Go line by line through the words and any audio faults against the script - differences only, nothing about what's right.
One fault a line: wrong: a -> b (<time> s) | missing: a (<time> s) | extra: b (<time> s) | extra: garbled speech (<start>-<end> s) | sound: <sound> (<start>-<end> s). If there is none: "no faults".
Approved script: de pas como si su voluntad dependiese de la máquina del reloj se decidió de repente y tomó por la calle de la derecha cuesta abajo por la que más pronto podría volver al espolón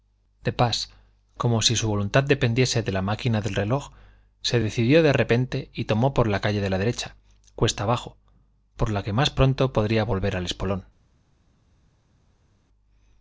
no faults